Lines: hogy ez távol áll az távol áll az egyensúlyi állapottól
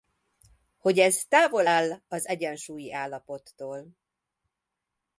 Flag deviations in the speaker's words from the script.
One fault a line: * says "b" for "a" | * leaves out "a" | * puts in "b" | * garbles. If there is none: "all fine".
* leaves out "távol áll az"